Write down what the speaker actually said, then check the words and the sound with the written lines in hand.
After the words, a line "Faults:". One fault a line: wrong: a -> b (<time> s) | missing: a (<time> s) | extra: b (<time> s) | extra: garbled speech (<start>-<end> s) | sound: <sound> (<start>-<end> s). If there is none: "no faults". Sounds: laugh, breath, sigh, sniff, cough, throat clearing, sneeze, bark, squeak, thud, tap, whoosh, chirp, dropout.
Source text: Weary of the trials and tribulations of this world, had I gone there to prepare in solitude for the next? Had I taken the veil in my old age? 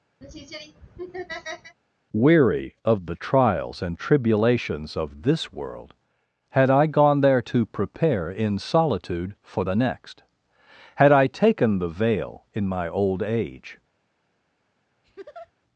Weary of the trials and tribulations of this world, had I gone there to prepare in solitude for the next? Had I taken the veil in my old age?
Faults:
sound: laugh (0.2-1.8 s)
sound: laugh (15.0-15.5 s)